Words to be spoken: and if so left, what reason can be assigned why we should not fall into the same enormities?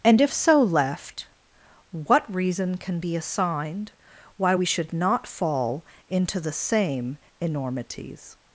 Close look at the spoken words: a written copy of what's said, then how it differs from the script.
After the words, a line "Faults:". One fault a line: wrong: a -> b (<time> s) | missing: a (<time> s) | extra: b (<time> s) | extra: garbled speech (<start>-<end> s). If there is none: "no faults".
and if so left, what reason can be assigned why we should not fall into the same enormities?
Faults:
no faults